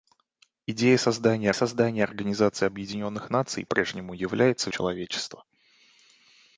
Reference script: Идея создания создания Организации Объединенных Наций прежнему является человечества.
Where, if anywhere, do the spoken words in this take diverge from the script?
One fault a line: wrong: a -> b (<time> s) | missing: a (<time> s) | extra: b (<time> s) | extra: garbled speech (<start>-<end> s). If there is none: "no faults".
no faults